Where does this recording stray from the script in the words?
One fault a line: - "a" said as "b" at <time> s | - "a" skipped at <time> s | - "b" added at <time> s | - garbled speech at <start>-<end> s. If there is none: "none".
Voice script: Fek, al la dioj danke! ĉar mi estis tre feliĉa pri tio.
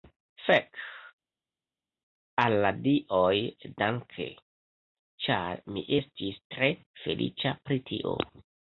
none